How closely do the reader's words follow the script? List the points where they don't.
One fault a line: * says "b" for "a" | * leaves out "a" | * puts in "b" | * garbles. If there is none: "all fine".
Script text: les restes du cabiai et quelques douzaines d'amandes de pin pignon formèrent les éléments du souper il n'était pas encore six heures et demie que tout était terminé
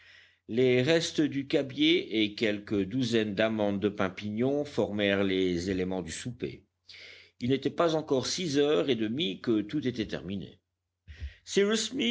all fine